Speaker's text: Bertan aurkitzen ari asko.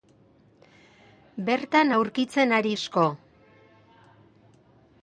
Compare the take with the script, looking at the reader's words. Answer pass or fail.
pass